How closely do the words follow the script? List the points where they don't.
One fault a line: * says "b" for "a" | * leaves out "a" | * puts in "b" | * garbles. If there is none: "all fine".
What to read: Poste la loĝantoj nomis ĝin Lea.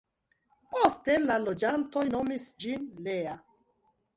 all fine